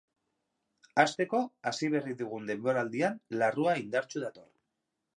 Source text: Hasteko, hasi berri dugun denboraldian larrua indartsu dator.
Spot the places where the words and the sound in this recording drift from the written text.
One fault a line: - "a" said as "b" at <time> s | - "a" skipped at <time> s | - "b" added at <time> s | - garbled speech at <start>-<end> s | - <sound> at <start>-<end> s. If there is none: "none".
none